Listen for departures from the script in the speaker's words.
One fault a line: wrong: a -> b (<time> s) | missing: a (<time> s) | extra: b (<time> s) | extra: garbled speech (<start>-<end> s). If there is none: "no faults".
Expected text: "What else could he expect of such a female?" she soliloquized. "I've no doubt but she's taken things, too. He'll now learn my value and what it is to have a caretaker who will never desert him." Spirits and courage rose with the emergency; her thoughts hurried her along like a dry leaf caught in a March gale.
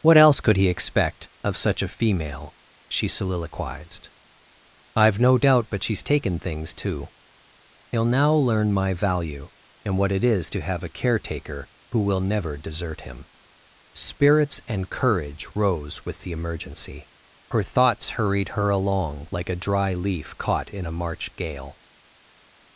no faults